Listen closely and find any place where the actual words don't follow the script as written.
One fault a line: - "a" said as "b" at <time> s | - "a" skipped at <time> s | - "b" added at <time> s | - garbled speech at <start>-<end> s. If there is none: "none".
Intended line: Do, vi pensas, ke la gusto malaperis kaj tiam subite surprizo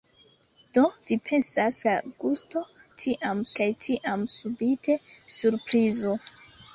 - "ke" skipped at 1.8 s
- "malaperis" said as "tiam" at 3.0 s